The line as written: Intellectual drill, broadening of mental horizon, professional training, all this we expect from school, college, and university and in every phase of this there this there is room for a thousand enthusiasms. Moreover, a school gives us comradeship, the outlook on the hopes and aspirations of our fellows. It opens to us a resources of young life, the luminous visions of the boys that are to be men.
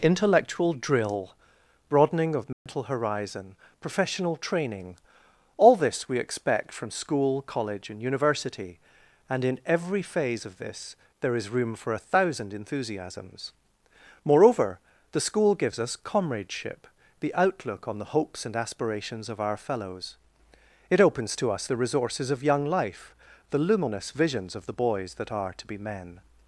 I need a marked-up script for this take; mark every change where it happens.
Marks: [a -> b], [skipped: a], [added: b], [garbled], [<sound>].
Intellectual drill, broadening of mental [dropout] horizon, professional training, all this we expect from school, college, and university and in every phase of this there [skipped: this there] is room for a thousand enthusiasms. Moreover, [a -> the] school gives us comradeship, the outlook on the hopes and aspirations of our fellows. It opens to us [a -> the] resources of young life, the luminous visions of the boys that are to be men.